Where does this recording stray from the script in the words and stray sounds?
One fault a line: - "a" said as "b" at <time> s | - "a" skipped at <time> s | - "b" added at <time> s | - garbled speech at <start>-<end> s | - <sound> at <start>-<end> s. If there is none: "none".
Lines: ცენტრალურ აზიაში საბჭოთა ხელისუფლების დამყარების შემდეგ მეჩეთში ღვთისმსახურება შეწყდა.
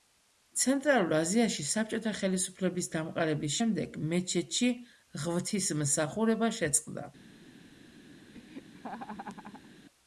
- laugh at 8.3-9.7 s